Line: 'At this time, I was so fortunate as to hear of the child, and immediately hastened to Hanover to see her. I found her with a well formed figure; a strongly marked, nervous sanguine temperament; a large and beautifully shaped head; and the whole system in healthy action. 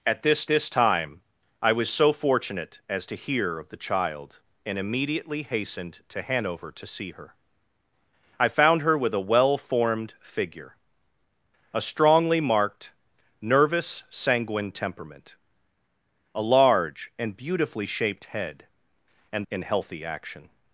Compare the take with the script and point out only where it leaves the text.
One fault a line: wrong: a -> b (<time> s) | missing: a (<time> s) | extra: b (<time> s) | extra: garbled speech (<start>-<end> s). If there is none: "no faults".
extra: this (0.5 s)
missing: the whole system (19.4 s)